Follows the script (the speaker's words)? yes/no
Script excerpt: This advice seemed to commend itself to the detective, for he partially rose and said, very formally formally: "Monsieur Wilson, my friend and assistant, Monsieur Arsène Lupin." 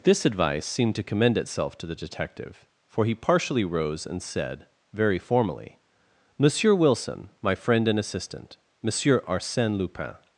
no